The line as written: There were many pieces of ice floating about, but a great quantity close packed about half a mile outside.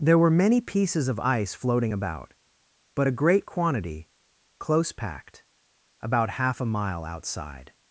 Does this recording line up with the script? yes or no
yes